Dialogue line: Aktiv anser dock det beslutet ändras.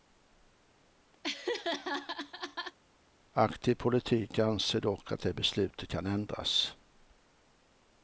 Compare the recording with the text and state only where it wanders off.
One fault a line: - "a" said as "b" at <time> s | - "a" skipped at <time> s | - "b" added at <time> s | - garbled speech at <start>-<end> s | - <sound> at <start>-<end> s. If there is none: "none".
- laugh at 1.2-2.8 s
- "politik" added at 3.7 s
- "att" added at 5.1 s
- "kan" added at 5.9 s